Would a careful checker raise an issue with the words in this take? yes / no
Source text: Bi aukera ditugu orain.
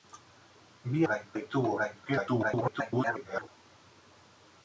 yes